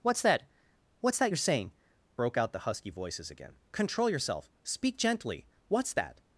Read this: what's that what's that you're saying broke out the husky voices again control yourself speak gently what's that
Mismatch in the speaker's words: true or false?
false